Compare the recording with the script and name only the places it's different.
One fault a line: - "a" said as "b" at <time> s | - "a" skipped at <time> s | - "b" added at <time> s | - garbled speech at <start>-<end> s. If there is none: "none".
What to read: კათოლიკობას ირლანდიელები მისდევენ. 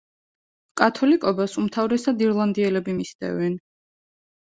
- "უმთავრესად" added at 1.6 s